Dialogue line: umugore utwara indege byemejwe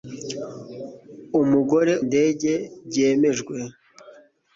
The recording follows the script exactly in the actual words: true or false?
false